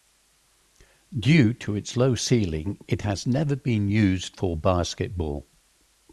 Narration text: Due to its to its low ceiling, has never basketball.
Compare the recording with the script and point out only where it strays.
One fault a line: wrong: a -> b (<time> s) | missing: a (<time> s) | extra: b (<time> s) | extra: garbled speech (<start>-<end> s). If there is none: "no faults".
missing: to its (1.9 s)
extra: it (2.9 s)
extra: been used for (3.5 s)